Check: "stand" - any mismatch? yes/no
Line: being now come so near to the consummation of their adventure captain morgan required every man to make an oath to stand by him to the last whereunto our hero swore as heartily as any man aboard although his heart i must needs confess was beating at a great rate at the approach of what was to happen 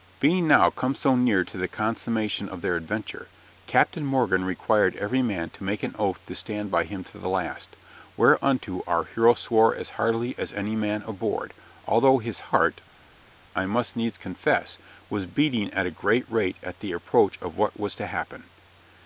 no